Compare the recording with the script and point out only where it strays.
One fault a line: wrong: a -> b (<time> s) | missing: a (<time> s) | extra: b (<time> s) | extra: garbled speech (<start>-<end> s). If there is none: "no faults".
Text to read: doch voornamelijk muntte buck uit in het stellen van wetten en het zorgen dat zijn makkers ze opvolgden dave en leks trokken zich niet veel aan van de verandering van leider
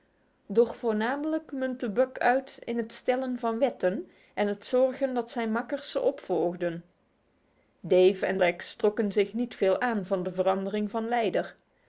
no faults